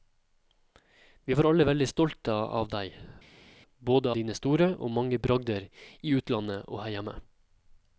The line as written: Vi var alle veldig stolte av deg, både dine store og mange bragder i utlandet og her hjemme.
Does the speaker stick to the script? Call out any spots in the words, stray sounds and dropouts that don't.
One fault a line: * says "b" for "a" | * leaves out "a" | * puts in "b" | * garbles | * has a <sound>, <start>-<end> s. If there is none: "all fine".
all fine